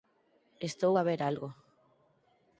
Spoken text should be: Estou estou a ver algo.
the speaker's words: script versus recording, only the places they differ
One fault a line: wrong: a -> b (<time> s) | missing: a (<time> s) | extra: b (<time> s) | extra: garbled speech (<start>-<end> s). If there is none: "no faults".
missing: estou (0.9 s)